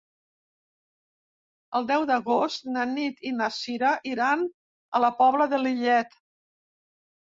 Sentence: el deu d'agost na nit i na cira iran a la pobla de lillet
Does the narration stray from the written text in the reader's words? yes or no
no